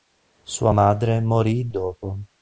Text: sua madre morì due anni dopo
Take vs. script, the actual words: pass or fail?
fail